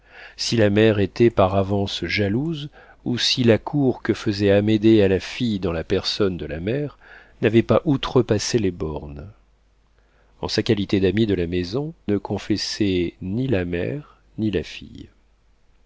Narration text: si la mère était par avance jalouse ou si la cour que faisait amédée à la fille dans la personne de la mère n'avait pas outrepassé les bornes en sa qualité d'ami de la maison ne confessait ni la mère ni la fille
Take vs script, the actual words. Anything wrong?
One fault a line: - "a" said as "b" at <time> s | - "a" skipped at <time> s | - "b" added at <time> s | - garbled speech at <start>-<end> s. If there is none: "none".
none